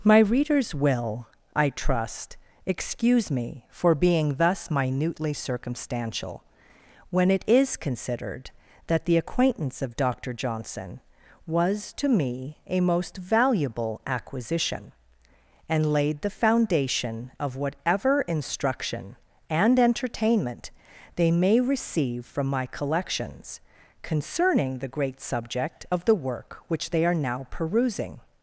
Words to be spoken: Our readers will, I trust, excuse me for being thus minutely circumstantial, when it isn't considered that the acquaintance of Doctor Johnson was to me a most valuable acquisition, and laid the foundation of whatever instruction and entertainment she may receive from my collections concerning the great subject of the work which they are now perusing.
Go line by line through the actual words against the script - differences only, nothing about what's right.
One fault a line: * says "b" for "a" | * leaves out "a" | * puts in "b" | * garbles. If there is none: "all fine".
* says "My" for "Our"
* says "is" for "isn't"
* says "they" for "she"